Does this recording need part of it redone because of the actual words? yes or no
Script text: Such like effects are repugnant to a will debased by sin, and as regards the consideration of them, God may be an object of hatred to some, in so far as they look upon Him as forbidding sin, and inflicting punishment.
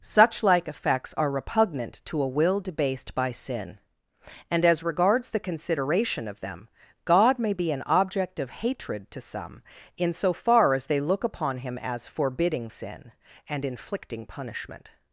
no